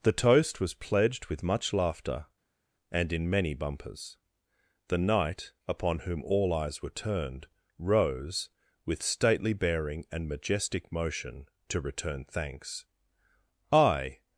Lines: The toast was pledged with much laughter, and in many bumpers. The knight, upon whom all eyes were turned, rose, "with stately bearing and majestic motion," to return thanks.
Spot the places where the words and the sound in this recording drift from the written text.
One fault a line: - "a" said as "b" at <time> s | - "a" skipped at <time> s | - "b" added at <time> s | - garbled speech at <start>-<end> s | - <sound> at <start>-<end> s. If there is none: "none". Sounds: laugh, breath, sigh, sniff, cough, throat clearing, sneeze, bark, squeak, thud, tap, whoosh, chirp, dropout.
- "I" added at 13.7 s